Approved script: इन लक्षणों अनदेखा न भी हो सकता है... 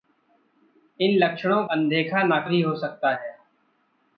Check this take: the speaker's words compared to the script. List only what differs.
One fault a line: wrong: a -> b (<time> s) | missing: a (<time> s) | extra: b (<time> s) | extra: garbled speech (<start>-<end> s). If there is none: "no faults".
no faults